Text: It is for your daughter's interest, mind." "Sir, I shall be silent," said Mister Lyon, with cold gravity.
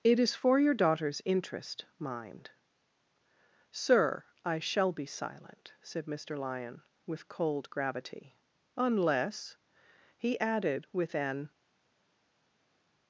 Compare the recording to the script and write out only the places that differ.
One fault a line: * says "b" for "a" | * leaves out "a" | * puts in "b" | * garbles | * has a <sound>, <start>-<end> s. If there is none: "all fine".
* puts in "Unless he added with an"